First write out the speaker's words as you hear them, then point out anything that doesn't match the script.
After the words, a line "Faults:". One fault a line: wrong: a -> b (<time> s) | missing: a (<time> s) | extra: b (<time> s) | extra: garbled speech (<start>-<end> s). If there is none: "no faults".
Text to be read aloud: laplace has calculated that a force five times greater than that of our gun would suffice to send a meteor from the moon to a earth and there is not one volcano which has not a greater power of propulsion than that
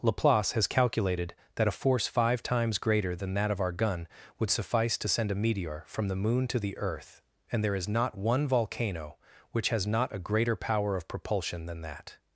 laplace has calculated that a force five times greater than that of our gun would suffice to send a meteor from the moon to the earth and there is not one volcano which has not a greater power of propulsion than that
Faults:
wrong: a -> the (6.6 s)